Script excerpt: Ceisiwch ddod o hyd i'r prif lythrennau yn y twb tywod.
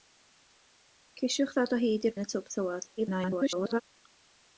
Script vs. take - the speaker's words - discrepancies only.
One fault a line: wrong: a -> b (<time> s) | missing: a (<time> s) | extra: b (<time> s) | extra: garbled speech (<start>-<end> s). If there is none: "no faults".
missing: prif lythrennau (2.1 s)
extra: garbled speech (3.0-3.8 s)